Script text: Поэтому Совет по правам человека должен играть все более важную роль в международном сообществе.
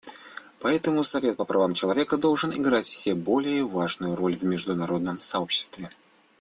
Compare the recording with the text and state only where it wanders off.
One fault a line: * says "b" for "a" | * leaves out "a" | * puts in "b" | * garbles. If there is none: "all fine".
all fine